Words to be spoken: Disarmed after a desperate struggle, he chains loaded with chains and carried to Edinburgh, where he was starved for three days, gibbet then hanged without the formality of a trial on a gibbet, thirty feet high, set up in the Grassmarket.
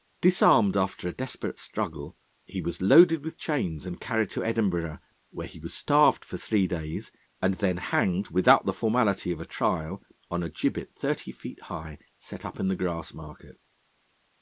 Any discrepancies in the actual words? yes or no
yes